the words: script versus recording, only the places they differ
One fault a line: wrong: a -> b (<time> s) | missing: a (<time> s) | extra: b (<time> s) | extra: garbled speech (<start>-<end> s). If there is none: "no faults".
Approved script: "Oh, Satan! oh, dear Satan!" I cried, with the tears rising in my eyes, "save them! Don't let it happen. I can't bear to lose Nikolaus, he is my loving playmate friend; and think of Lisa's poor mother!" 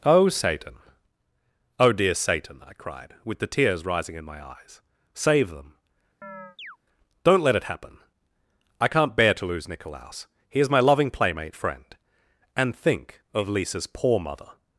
no faults